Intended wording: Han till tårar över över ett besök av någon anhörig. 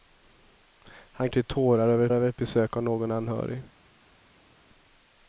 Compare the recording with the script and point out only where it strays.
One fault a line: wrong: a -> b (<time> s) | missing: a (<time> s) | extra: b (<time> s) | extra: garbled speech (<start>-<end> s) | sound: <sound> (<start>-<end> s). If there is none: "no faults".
no faults